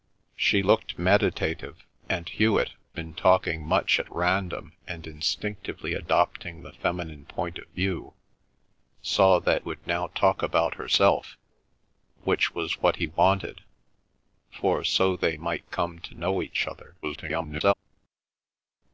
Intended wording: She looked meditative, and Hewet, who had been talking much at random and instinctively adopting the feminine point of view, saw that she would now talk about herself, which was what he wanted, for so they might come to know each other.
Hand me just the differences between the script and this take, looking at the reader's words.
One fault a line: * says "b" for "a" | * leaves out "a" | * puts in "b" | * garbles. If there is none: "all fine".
* leaves out "who had"
* leaves out "she"
* garbles